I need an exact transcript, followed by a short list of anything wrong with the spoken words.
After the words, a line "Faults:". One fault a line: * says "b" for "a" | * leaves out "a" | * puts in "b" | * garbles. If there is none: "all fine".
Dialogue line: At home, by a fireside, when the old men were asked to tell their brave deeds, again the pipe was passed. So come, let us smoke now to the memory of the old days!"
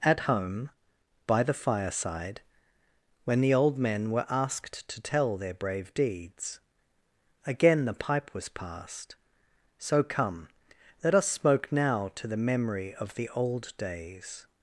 At home, by the fireside, when the old men were asked to tell their brave deeds, again the pipe was passed. So come, let us smoke now to the memory of the old days!"
Faults:
* says "the" for "a"